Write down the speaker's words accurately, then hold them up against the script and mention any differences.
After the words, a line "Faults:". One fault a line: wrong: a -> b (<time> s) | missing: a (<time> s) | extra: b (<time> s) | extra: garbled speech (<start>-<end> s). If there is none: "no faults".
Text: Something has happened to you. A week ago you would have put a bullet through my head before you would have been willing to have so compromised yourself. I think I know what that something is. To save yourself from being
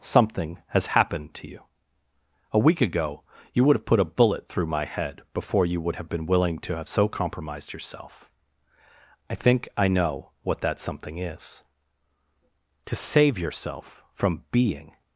Something has happened to you. A week ago you would have put a bullet through my head before you would have been willing to have so compromised yourself. I think I know what that something is. To save yourself from being
Faults:
no faults